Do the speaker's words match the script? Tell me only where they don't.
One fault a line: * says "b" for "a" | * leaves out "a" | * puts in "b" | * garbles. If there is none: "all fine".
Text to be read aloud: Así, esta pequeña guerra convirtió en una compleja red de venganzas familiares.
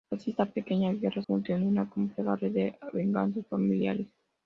all fine